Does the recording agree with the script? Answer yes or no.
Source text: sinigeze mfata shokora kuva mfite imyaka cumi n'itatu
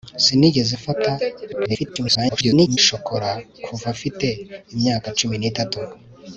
no